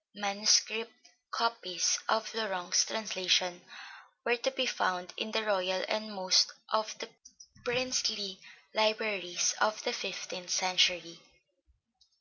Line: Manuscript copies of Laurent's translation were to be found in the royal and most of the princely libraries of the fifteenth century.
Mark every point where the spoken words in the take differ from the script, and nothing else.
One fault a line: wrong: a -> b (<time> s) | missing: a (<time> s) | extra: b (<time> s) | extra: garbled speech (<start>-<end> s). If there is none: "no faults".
no faults